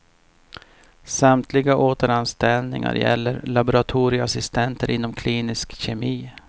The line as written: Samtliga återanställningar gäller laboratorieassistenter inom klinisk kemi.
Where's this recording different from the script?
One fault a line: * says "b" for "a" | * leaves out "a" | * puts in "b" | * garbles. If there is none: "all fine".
all fine